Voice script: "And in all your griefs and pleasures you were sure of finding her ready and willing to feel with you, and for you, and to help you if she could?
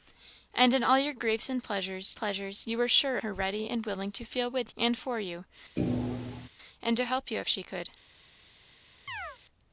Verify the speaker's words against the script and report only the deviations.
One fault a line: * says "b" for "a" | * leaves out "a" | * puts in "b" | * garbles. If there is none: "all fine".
* puts in "pleasures"
* leaves out "of finding"
* leaves out "you"